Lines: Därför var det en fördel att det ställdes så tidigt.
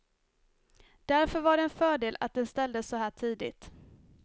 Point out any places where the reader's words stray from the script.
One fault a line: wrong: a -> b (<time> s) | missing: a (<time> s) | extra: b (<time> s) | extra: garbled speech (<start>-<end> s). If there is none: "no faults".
wrong: det -> den (2.3 s)
extra: här (3.0 s)